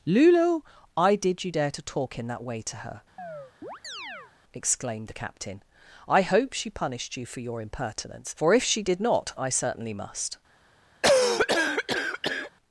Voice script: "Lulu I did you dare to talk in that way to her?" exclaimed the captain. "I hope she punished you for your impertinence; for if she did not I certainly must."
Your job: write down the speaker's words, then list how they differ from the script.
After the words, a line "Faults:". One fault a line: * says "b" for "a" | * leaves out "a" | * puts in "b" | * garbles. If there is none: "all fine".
"Lulu I did you dare to talk in that way to her?" exclaimed the captain. "I hope she punished you for your impertinence; for if she did not I certainly must."
Faults:
all fine